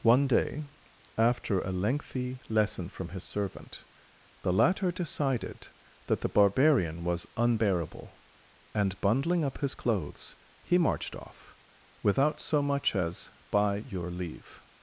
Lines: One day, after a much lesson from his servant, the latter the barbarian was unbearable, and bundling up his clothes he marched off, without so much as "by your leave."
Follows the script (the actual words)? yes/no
no